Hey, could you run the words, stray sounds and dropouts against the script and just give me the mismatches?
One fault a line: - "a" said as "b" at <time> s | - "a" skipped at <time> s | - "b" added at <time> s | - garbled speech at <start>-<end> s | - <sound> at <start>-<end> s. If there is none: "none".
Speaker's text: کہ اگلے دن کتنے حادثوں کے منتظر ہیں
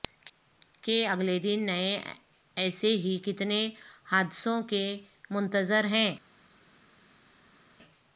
- "نئے ایسے ہی" added at 1.6 s